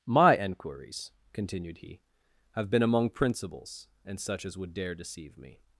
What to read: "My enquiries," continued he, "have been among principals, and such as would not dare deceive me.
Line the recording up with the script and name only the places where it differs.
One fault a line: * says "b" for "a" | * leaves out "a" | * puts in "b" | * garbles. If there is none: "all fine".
* leaves out "not"